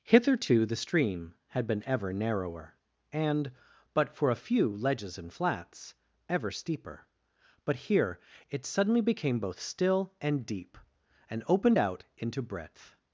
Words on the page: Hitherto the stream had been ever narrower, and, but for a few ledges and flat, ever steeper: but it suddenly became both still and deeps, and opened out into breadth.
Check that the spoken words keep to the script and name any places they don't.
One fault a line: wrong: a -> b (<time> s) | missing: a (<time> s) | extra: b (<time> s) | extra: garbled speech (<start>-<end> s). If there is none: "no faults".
wrong: flat -> flats (5.3 s)
extra: here (7.8 s)
wrong: deeps -> deep (10.4 s)